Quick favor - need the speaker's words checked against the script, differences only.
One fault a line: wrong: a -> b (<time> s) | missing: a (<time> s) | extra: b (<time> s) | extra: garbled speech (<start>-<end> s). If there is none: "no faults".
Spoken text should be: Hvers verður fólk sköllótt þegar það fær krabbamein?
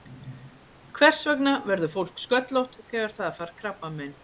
extra: vegna (1.3 s)